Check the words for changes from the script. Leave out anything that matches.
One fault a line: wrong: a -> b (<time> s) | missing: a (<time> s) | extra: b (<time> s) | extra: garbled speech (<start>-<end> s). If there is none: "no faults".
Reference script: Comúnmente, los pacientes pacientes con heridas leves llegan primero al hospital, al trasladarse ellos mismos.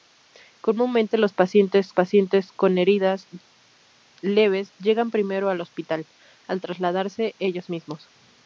no faults